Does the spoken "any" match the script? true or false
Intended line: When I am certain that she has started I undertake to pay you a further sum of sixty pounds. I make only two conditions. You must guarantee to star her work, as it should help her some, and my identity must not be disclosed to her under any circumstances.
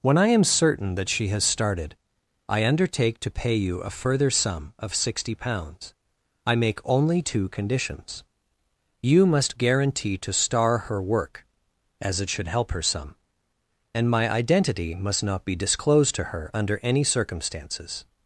true